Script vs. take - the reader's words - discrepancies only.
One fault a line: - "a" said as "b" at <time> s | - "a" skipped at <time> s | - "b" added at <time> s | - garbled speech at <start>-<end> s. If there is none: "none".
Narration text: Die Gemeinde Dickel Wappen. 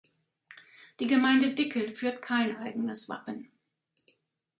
- "führt kein eigenes" added at 1.9 s